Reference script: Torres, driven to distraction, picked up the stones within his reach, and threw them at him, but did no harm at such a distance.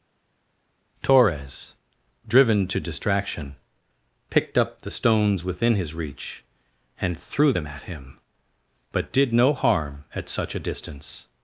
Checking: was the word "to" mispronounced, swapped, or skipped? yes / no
no